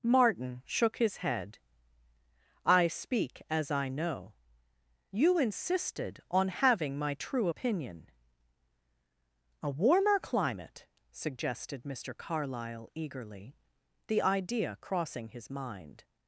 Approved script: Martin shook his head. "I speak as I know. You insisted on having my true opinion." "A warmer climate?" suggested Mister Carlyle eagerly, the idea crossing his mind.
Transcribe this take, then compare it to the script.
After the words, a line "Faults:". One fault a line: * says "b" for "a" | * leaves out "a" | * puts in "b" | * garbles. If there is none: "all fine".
Martin shook his head. "I speak as I know. You insisted on having my true opinion." "A warmer climate?" suggested Mister Carlyle eagerly, the idea crossing his mind.
Faults:
all fine